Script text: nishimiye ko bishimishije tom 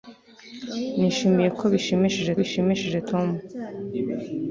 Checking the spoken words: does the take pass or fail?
fail